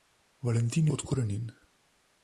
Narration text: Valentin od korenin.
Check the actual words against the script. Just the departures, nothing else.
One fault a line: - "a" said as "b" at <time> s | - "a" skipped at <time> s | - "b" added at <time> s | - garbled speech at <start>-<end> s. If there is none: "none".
none